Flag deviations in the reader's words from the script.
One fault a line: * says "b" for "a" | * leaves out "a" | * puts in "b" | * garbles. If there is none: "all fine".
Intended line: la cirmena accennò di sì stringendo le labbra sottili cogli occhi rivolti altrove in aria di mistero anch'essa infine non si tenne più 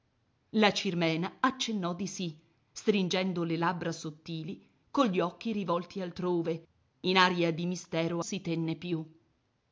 * leaves out "anch'essa infine non"